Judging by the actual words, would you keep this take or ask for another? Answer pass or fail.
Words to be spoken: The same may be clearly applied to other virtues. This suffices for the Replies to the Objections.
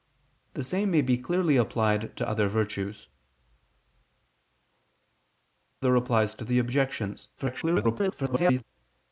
fail